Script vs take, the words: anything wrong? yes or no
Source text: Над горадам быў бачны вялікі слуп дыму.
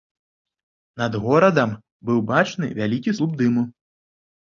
no